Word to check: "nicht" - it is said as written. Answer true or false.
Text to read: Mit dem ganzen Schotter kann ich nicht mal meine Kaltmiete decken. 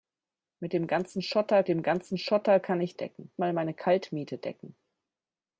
false